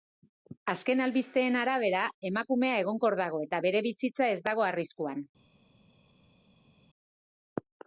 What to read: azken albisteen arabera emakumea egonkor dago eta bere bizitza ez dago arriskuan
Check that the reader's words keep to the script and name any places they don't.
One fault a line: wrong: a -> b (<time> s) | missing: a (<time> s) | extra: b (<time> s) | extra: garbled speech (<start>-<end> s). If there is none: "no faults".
no faults